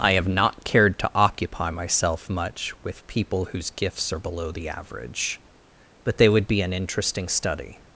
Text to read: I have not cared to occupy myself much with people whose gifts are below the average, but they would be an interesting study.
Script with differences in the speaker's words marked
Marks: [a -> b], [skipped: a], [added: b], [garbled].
I have not cared to occupy myself much with people whose gifts are below the average, but they would be an interesting study.